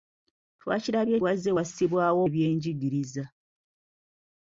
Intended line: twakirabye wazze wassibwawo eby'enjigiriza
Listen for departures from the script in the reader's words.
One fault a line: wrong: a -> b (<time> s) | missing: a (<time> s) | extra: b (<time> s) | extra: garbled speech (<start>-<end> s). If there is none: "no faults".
no faults